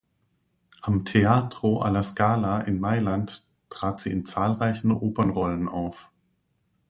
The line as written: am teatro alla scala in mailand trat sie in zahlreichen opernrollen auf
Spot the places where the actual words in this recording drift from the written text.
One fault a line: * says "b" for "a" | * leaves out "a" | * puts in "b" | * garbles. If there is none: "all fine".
all fine